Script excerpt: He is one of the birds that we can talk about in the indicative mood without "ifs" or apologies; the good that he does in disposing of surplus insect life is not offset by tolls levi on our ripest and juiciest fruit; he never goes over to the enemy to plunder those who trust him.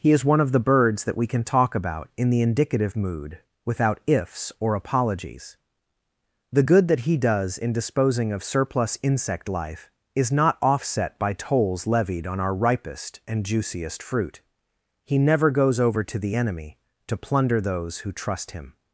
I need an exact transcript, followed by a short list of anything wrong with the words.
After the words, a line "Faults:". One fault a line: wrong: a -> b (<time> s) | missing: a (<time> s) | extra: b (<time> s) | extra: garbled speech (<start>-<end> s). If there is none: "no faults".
He is one of the birds that we can talk about in the indicative mood without "ifs" or apologies; the good that he does in disposing of surplus insect life is not offset by tolls levied on our ripest and juiciest fruit; he never goes over to the enemy to plunder those who trust him.
Faults:
wrong: levi -> levied (11.8 s)